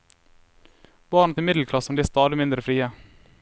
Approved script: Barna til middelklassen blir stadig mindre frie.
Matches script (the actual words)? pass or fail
pass